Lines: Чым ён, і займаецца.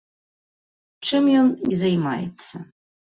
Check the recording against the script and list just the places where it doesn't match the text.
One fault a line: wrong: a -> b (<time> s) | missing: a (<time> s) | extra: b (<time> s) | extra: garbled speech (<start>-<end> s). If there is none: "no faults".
no faults